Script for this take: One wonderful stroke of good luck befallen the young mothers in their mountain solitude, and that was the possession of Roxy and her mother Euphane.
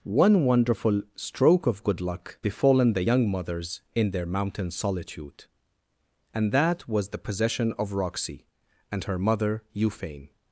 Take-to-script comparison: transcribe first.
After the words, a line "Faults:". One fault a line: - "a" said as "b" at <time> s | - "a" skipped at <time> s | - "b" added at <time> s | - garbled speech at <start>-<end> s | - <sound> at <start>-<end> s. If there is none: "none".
One wonderful stroke of good luck befallen the young mothers in their mountain solitude, and that was the possession of Roxy and her mother Euphane.
Faults:
none